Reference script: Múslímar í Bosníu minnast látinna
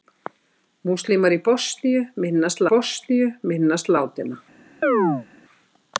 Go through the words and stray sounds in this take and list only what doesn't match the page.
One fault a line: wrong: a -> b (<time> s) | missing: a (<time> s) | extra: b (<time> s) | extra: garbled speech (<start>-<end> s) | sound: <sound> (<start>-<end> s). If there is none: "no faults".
extra: Bosníu minnast (2.7 s)
sound: chirp (4.8-5.3 s)